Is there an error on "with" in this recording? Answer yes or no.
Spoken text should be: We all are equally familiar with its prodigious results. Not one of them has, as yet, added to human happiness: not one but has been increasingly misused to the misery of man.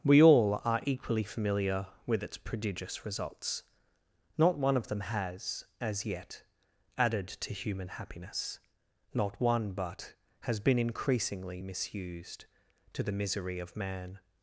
no